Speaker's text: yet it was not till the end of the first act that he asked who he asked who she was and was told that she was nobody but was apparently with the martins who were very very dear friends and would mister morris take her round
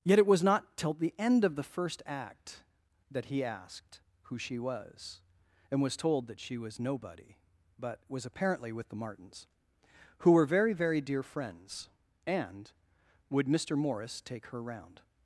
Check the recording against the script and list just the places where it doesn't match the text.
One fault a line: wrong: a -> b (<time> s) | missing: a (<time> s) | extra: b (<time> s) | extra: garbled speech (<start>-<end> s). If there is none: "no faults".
missing: he asked who (4.4 s)